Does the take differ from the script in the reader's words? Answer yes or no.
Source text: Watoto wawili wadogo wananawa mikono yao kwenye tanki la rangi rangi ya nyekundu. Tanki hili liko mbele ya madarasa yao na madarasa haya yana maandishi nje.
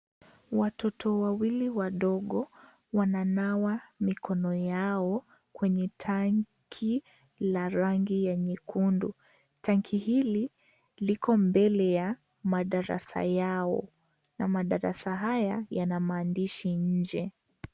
yes